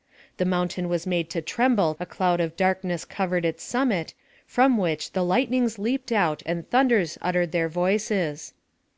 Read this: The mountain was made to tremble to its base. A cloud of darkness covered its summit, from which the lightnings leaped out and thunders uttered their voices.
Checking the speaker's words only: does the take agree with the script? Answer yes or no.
no